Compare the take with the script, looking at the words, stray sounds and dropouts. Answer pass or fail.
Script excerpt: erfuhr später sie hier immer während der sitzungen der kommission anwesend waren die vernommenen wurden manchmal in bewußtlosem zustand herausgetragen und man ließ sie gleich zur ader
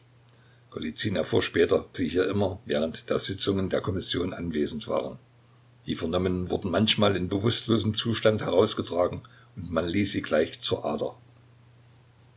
pass